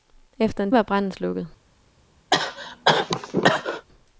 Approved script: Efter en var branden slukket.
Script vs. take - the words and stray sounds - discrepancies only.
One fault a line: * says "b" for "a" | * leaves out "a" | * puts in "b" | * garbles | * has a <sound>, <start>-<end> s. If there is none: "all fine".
* has a cough, 2.3-3.9 s